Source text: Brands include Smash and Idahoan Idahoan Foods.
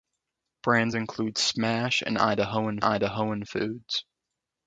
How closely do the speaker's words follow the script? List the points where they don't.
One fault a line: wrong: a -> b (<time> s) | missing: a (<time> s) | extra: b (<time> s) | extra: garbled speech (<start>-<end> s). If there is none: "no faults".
no faults